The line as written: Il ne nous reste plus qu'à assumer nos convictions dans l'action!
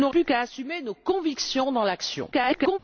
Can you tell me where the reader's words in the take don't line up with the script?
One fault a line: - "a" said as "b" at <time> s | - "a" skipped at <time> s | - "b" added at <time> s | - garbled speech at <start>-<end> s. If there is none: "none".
- "reste" skipped at 0.1 s
- garbled speech at 2.3-2.8 s